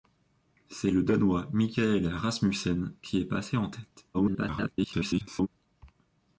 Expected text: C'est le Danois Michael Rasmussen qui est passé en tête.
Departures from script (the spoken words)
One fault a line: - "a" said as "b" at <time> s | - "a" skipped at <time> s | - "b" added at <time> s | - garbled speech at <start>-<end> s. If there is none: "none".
- garbled speech at 4.1-5.5 s